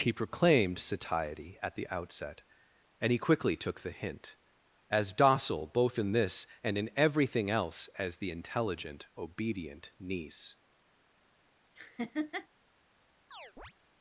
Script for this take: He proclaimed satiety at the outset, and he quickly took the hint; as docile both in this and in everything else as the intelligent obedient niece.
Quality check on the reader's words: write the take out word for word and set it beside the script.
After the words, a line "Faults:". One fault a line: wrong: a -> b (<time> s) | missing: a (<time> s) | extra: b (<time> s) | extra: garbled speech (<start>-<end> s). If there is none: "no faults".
He proclaimed satiety at the outset, and he quickly took the hint; as docile both in this and in everything else as the intelligent obedient niece.
Faults:
no faults